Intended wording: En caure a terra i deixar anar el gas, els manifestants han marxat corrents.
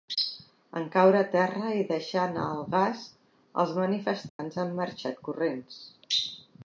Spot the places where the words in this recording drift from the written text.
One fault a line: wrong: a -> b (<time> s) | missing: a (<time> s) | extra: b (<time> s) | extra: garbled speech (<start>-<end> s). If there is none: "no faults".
no faults